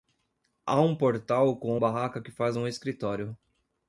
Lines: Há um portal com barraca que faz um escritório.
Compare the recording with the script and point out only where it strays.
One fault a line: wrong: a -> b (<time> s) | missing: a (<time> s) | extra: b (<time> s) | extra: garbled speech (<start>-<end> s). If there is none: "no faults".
no faults